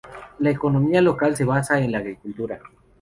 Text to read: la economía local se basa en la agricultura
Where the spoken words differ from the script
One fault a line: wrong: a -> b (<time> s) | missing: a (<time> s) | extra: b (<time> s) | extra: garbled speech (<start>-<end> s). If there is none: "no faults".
no faults